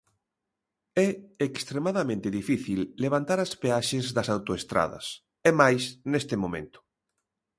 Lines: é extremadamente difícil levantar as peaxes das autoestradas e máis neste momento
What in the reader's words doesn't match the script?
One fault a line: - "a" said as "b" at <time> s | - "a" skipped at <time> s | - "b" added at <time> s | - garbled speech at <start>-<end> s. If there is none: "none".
none